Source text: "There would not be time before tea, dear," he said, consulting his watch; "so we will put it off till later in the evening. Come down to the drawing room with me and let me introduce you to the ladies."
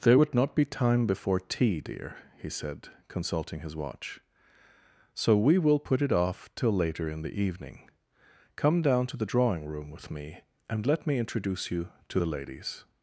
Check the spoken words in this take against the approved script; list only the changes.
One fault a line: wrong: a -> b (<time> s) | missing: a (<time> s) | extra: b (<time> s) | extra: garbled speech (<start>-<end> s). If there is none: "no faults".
no faults